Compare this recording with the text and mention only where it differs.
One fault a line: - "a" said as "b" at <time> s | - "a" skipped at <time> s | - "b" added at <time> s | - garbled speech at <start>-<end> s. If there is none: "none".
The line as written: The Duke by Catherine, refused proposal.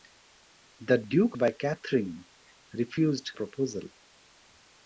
none